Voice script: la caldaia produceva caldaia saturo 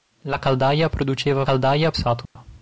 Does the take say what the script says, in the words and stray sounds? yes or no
no